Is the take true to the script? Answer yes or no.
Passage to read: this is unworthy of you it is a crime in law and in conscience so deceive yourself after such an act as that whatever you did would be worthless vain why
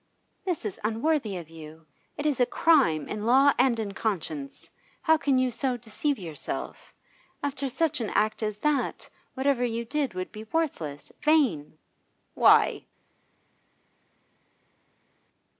no